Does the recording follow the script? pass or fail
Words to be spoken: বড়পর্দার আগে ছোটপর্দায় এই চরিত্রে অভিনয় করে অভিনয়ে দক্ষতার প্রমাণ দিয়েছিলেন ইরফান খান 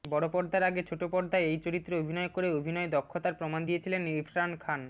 pass